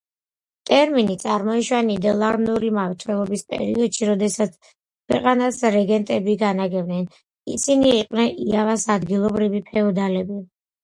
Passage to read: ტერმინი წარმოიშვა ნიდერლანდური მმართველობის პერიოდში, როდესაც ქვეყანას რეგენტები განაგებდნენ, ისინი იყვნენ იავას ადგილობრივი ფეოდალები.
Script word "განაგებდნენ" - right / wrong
right